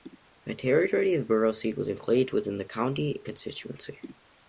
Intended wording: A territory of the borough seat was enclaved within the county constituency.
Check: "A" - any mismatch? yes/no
yes